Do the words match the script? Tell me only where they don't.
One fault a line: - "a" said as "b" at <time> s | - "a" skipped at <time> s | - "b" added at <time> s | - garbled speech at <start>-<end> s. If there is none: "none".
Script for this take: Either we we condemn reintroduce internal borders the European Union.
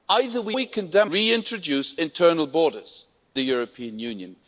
none